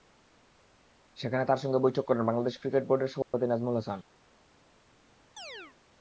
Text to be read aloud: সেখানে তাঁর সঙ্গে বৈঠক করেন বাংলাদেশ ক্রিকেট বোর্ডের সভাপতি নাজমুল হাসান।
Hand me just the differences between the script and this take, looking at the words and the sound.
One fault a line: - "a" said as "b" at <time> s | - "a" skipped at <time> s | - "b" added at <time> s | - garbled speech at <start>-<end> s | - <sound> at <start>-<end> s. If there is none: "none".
- dropout at 3.2-3.3 s
- chirp at 5.4-5.8 s